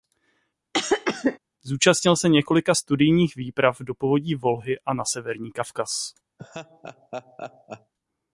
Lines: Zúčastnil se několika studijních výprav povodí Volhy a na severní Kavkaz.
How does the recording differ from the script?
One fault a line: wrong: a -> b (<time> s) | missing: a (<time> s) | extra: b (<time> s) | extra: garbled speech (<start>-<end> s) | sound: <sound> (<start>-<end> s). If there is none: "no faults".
sound: cough (0.7-1.4 s)
extra: do (3.8 s)
sound: laugh (6.4-7.9 s)